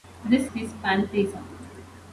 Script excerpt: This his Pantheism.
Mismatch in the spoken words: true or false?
false